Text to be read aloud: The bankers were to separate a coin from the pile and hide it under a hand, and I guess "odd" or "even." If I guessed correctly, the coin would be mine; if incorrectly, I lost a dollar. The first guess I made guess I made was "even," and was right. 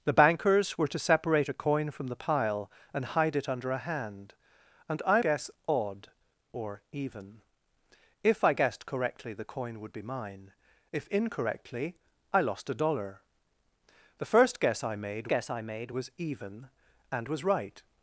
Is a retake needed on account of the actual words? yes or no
no